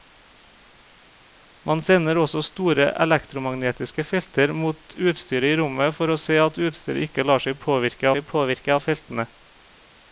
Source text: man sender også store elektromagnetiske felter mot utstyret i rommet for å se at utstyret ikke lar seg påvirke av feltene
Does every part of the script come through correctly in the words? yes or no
no